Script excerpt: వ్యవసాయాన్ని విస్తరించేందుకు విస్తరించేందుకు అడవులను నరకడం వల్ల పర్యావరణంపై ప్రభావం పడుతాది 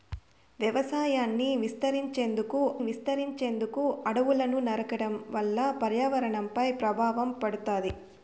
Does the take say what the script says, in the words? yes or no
yes